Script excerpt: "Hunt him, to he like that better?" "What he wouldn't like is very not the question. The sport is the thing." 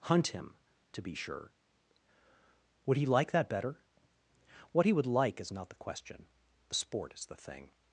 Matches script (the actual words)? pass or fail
fail